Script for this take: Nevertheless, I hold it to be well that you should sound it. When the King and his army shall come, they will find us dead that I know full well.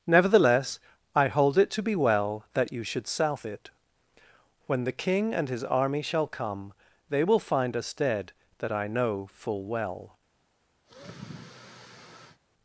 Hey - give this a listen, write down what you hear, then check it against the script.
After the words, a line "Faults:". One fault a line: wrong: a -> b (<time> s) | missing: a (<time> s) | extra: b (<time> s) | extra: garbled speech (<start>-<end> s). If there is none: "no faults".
Nevertheless, I hold it to be well that you should south it. When the King and his army shall come, they will find us dead that I know full well.
Faults:
wrong: sound -> south (3.1 s)